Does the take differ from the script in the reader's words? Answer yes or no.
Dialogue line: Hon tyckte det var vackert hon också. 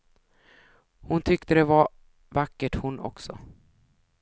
no